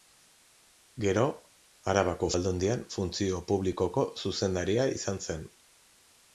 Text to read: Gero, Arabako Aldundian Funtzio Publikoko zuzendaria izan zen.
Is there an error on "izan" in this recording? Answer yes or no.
no